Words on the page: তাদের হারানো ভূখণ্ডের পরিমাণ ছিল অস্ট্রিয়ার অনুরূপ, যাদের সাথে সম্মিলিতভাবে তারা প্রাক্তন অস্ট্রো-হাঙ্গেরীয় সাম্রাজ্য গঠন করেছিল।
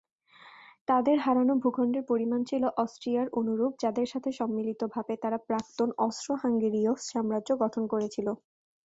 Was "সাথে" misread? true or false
false